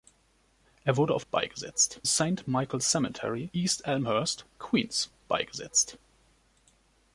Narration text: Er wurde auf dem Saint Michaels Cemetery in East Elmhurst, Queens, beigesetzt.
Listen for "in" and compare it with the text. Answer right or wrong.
wrong